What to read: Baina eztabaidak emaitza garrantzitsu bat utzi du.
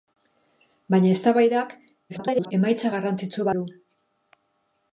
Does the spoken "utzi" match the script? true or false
false